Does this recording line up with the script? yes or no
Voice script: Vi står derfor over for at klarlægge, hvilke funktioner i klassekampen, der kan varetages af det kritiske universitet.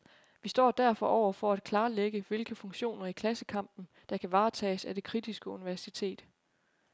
yes